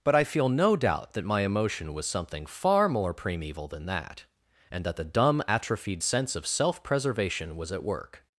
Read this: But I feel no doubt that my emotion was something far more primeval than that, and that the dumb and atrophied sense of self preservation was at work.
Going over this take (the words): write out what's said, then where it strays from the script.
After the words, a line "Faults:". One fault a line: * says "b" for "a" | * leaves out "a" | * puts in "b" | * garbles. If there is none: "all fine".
But I feel no doubt that my emotion was something far more primeval than that, and that the dumb atrophied sense of self preservation was at work.
Faults:
* leaves out "and"